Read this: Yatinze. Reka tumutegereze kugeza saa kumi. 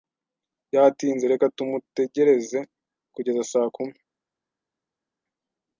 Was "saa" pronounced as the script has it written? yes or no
yes